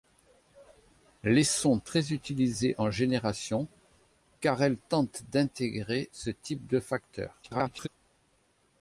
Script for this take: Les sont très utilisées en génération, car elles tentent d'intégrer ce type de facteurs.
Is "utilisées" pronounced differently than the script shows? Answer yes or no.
no